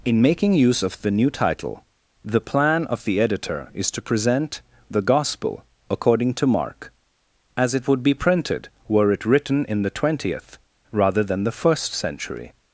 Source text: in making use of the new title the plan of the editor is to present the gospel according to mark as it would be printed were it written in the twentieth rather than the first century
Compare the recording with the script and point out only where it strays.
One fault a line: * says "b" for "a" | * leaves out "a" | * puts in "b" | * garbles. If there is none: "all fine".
all fine